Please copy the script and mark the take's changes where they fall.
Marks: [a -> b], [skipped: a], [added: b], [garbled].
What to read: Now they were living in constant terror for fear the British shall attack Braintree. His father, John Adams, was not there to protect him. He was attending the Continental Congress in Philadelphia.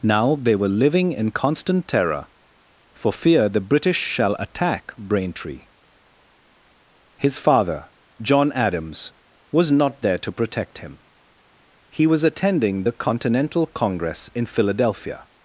Now they were living in constant terror for fear the British shall attack Braintree. His father, John Adams, was not there to protect him. He was attending the Continental Congress in Philadelphia.